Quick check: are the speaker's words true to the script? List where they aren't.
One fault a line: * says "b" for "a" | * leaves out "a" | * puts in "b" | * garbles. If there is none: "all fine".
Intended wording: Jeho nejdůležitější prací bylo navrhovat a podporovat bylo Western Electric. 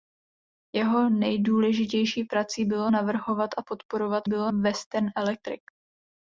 all fine